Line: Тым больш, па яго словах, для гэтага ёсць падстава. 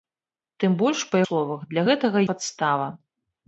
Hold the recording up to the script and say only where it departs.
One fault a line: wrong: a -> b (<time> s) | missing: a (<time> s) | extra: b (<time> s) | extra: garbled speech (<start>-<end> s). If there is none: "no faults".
missing: яго (1.2 s)
missing: ёсць (2.2 s)